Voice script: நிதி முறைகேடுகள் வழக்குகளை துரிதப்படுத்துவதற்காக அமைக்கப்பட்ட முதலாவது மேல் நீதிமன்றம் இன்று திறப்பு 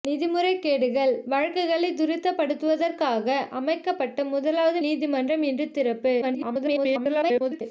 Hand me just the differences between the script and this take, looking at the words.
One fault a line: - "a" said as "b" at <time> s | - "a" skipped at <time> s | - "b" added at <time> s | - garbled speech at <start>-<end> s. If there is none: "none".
- "மேல்" skipped at 4.8 s
- garbled speech at 6.2-7.6 s